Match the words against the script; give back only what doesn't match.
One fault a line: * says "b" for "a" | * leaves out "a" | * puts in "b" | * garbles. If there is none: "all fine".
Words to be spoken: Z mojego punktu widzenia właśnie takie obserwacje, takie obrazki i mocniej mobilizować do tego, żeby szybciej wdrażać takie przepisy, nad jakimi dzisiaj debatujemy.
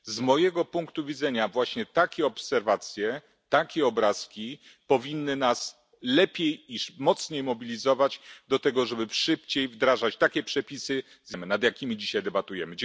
* puts in "powinny nas lepiej"